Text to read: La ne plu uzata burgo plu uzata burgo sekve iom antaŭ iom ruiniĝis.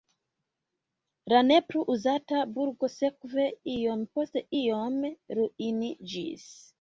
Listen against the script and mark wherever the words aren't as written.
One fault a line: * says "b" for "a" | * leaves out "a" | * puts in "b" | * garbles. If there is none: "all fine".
* leaves out "plu uzata burgo"
* says "post" for "antaŭ"